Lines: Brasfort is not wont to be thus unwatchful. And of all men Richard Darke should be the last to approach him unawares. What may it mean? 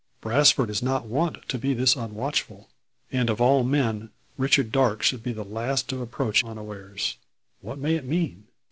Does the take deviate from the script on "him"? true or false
true